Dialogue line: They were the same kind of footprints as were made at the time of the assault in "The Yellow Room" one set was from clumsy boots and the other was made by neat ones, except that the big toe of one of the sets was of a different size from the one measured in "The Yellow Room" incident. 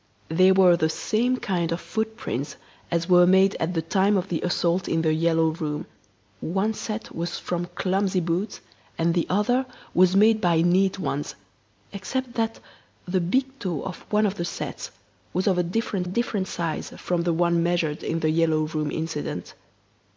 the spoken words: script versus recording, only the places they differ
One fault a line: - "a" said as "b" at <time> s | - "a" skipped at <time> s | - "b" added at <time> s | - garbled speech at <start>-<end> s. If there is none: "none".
- "different" added at 16.0 s